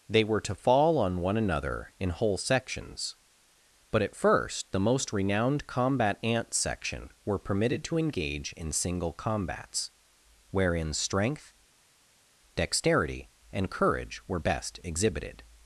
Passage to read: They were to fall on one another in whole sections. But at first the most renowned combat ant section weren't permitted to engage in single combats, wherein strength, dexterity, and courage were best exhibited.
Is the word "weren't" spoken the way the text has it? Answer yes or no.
no